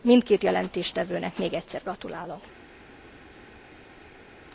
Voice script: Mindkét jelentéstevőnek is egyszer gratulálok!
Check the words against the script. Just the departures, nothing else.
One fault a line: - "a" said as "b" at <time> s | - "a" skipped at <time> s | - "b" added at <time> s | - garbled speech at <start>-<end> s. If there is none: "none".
- "is" said as "még" at 1.4 s